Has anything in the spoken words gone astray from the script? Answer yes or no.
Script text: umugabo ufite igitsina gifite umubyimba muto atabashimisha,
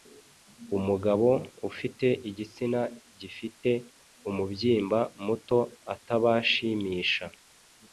no